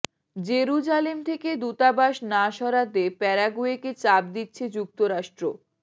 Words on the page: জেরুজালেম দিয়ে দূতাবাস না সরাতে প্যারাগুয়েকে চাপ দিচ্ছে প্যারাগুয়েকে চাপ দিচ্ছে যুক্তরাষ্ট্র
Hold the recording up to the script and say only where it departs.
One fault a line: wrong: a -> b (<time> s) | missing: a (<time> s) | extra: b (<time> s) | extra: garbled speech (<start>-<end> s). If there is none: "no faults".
wrong: দিয়ে -> থেকে (1.2 s)
missing: প্যারাগুয়েকে চাপ দিচ্ছে (4.6 s)